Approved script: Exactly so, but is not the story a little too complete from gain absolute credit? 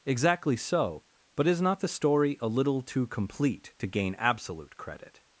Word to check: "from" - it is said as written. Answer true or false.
false